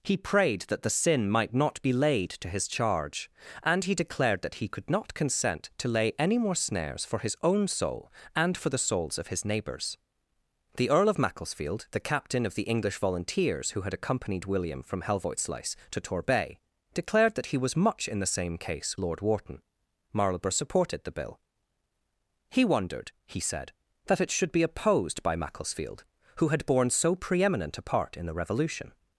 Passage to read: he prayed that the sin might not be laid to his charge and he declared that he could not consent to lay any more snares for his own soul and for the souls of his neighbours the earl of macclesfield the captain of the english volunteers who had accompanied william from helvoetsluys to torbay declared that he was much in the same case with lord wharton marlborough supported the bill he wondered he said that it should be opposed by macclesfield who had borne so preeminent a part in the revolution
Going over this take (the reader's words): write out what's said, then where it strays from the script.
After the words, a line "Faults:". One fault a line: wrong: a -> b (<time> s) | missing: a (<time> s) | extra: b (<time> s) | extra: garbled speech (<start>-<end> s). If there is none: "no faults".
he prayed that the sin might not be laid to his charge and he declared that he could not consent to lay any more snares for his own soul and for the souls of his neighbours the earl of macclesfield the captain of the english volunteers who had accompanied william from helvoetsluys to torbay declared that he was much in the same case lord wharton marlborough supported the bill he wondered he said that it should be opposed by macclesfield who had borne so preeminent a part in the revolution
Faults:
missing: with (19.0 s)